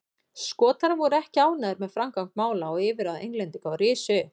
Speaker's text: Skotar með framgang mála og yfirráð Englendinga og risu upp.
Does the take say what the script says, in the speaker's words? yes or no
no